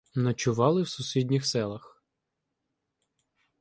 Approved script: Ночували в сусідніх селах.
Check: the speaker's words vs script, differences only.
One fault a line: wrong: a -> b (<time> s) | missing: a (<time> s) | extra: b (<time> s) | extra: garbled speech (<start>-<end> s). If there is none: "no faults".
no faults